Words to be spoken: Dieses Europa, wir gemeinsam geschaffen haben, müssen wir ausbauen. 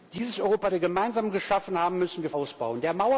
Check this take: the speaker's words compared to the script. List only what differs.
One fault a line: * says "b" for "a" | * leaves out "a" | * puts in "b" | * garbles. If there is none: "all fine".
all fine